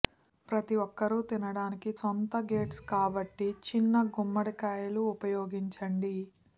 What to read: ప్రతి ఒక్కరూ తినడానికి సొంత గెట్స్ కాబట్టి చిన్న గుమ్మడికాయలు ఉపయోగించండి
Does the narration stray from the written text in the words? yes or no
no